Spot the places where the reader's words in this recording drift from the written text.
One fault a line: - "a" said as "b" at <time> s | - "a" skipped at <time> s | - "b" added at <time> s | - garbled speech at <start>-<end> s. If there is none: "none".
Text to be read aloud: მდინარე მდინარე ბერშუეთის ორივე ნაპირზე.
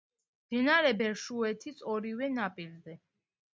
- "მდინარე" skipped at 0.9 s